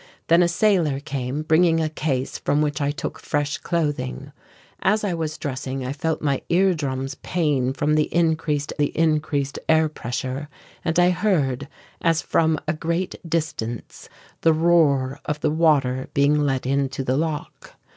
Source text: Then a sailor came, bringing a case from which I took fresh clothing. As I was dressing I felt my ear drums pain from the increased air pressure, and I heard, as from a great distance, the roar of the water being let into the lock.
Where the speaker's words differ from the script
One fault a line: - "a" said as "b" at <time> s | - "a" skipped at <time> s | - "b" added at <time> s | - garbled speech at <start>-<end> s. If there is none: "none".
- "the increased" added at 8.8 s